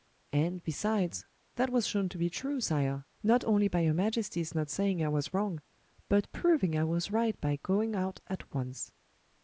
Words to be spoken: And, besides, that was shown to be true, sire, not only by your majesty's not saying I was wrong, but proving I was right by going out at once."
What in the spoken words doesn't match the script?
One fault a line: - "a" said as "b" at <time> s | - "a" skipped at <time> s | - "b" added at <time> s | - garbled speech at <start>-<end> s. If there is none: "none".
none